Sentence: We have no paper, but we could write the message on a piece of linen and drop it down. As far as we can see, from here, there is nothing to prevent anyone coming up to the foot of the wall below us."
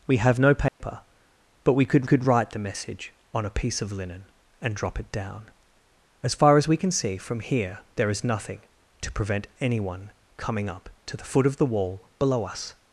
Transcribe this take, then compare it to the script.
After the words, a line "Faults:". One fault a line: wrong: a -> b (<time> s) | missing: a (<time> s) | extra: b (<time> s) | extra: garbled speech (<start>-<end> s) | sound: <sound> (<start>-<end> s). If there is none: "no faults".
We have no paper, but we could could write the message on a piece of linen and drop it down. As far as we can see, from here, there is nothing to prevent anyone coming up to the foot of the wall below us."
Faults:
sound: dropout (0.7-0.8 s)
extra: could (2.0 s)